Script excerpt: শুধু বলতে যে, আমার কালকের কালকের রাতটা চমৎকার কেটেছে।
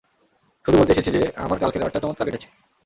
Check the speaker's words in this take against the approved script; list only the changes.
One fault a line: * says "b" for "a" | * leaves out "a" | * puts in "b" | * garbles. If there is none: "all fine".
* puts in "এসেছি"
* leaves out "কালকের"